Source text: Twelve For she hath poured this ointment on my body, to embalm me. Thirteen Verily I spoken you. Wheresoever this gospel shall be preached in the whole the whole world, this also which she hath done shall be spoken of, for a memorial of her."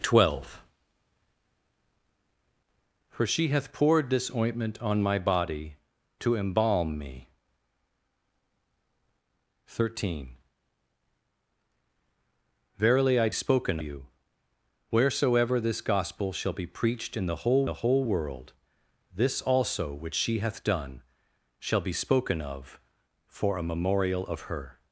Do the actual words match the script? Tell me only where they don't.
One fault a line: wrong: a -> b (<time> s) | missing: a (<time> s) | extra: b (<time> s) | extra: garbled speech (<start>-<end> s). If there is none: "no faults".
no faults